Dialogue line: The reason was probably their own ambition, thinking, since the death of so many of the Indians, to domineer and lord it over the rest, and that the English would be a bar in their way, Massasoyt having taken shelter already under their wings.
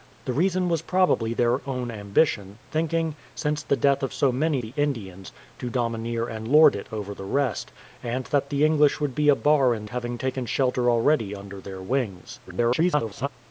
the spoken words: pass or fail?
fail